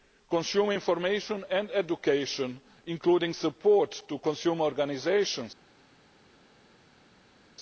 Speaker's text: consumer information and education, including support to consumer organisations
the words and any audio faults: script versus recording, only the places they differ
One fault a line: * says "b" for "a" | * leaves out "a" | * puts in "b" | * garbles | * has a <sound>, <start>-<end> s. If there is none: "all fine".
all fine